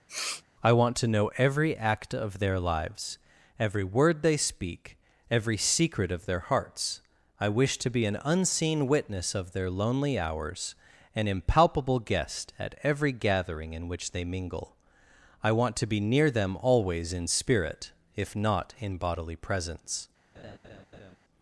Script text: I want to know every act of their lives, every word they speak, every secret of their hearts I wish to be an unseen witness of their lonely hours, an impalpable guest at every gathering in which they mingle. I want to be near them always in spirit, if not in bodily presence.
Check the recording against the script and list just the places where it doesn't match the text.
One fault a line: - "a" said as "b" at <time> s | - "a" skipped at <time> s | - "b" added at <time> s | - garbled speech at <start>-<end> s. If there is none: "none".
none